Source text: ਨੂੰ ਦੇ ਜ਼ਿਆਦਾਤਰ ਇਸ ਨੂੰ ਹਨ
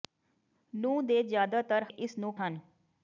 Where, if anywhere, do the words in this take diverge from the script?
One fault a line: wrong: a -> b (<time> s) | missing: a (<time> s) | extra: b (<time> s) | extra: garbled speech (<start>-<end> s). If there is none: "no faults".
no faults